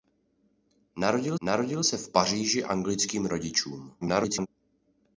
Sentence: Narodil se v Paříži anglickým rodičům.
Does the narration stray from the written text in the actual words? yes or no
yes